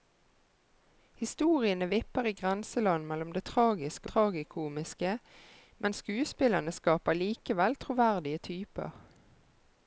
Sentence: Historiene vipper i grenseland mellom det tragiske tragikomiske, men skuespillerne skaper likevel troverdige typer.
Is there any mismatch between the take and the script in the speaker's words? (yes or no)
no